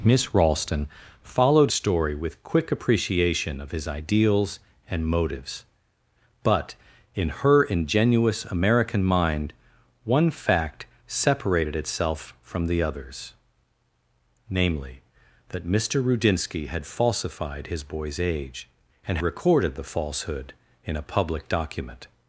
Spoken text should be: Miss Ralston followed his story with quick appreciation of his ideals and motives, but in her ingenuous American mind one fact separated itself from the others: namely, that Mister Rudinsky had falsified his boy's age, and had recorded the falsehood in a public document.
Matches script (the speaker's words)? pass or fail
fail